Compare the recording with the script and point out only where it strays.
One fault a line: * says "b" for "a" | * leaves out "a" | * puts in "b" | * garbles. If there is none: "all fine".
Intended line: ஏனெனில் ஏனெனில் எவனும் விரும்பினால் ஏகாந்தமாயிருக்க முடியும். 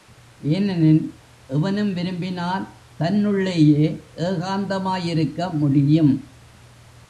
* leaves out "ஏனெனில்"
* puts in "தன்னுள்ளேயே"